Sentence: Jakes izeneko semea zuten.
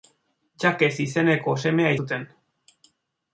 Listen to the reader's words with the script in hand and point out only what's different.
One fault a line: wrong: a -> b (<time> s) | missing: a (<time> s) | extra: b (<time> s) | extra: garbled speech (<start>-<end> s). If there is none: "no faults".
no faults